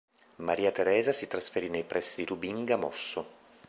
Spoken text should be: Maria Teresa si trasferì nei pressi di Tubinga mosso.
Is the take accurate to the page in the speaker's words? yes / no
yes